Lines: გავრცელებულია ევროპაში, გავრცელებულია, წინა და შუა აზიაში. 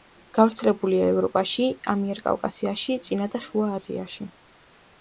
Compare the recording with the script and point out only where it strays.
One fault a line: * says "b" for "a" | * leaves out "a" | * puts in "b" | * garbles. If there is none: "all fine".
* says "ამიერკავკასიაში" for "გავრცელებულია"